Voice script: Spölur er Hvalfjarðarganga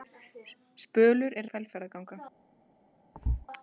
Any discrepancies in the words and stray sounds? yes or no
yes